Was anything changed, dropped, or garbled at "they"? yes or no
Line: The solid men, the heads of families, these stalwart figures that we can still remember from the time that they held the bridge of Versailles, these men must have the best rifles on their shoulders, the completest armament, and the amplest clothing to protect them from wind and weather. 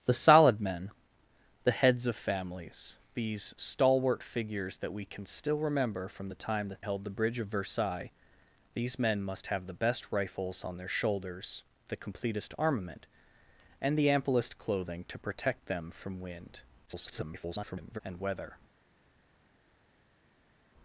yes